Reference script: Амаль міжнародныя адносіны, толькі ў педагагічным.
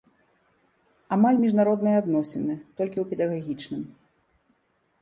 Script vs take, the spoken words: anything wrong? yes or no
no